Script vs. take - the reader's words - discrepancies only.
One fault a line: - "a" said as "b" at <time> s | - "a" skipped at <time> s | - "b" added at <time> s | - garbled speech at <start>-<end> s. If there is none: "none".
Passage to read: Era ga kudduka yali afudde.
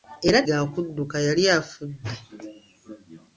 none